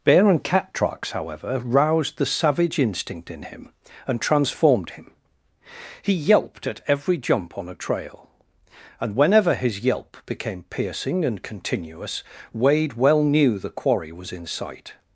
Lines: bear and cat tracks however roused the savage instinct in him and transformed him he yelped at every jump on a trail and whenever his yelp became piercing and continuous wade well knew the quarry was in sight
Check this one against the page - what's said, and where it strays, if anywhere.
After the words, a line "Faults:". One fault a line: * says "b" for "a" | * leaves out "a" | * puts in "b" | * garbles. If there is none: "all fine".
bear and cat tracks however roused the savage instinct in him and transformed him he yelped at every jump on a trail and whenever his yelp became piercing and continuous wade well knew the quarry was in sight
Faults:
all fine